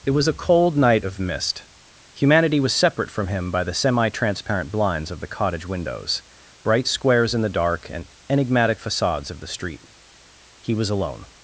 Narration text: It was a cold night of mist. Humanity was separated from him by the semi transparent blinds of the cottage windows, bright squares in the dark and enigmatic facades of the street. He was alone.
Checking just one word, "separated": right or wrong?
wrong